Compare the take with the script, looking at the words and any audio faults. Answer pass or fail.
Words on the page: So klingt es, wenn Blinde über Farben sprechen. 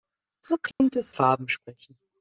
fail